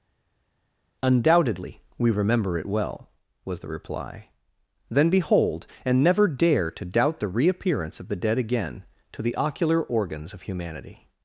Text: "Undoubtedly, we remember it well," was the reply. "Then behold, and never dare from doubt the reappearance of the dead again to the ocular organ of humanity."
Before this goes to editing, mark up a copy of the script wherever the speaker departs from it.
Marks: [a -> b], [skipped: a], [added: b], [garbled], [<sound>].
"Undoubtedly, we remember it well," was the reply. "Then behold, and never dare [from -> to] doubt the reappearance of the dead again to the ocular [organ -> organs] of humanity."